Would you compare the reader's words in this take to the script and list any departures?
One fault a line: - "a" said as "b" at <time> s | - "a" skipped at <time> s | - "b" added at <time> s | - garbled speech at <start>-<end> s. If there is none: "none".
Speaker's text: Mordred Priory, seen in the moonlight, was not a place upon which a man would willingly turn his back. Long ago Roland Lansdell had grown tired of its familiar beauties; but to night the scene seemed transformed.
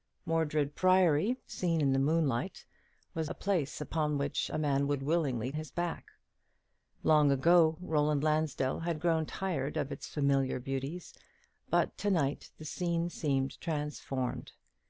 - "not" skipped at 3.3 s
- "turn" skipped at 5.5 s